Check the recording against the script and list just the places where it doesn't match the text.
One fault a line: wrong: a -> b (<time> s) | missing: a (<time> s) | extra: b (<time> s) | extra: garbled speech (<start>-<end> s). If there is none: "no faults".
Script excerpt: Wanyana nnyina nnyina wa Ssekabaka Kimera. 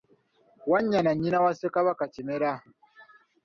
missing: nnyina (1.4 s)